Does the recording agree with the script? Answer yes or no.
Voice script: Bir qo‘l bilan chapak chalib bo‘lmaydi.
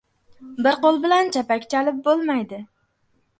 yes